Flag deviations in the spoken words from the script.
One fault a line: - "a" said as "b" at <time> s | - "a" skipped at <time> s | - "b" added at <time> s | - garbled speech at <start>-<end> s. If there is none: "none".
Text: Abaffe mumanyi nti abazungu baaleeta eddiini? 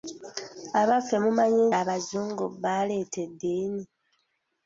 - "nti" skipped at 1.6 s